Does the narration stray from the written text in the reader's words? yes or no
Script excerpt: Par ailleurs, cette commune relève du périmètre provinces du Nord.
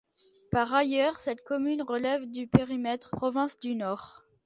no